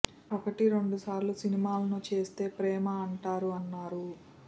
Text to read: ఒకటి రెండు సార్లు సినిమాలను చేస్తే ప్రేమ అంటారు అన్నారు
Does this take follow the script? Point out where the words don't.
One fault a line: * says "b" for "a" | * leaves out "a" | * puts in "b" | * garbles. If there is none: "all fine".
all fine